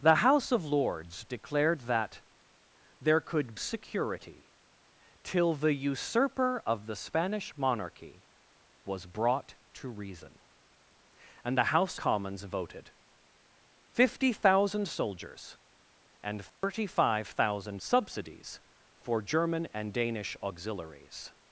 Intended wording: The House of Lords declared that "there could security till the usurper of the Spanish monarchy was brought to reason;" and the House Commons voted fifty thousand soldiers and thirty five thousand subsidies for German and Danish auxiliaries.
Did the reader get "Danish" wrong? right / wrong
right